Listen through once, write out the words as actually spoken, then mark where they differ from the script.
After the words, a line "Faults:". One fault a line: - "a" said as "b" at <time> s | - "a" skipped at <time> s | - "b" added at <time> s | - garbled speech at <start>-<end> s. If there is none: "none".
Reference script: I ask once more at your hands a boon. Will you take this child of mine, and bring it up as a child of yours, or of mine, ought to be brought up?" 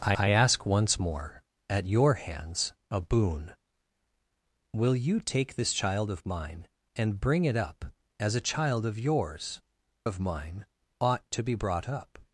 I I ask once more at your hands a boon. Will you take this child of mine, and bring it up as a child of yours, of mine, ought to be brought up?"
Faults:
- "I" added at 0.2 s
- "or" skipped at 9.6 s